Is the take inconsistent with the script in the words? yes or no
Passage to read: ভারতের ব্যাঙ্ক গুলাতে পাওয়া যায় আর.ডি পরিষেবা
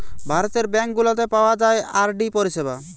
no